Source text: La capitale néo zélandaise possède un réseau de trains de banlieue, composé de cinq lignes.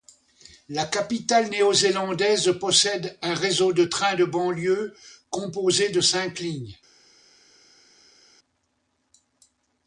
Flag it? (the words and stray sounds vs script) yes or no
no